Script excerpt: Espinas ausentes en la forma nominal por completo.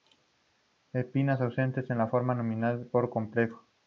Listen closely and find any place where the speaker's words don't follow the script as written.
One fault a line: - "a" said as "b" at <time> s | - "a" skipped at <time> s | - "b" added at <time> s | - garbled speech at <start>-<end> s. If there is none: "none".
none